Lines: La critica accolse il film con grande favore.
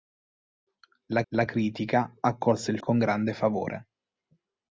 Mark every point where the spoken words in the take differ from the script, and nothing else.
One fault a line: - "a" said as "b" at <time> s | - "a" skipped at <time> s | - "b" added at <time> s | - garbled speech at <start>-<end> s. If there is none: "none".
- "la" added at 1.3 s
- "film" skipped at 2.8 s